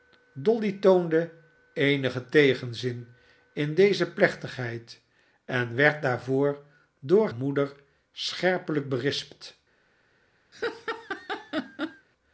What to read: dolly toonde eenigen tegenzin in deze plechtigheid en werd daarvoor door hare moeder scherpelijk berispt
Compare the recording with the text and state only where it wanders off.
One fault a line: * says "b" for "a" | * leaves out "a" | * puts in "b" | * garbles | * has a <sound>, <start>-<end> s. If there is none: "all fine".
* leaves out "hare"
* has a laugh, 10.5-12.1 s